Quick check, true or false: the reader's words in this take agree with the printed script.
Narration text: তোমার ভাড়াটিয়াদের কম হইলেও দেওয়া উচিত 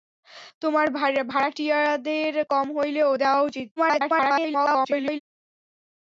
false